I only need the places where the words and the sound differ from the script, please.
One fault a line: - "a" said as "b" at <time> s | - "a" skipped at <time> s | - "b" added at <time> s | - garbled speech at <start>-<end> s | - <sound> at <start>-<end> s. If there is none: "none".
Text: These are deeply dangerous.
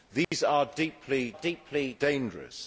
- dropout at 0.2-0.3 s
- "deeply" added at 1.3 s